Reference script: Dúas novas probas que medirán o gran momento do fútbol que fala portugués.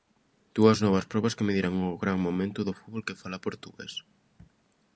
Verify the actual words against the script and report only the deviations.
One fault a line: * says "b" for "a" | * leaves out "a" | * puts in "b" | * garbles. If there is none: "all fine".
all fine